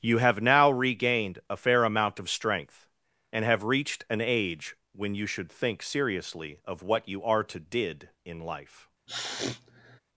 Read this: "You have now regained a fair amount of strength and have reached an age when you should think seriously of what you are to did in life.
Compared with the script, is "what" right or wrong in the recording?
right